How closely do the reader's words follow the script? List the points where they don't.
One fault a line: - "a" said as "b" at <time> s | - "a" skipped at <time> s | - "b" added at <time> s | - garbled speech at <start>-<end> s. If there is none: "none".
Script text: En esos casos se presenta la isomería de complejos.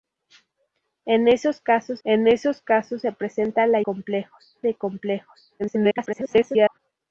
- "en esos casos" added at 2.0 s
- "isomería" said as "complejos" at 3.8 s
- garbled speech at 5.6-6.8 s